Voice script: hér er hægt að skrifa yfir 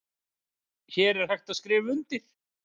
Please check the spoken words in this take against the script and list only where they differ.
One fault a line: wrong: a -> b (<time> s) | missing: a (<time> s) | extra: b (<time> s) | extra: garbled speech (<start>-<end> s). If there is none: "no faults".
wrong: yfir -> undir (2.0 s)